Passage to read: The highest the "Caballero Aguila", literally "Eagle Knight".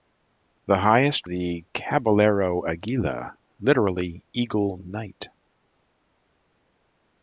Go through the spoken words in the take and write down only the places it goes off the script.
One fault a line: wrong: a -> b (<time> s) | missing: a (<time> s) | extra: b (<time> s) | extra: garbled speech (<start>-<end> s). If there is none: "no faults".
no faults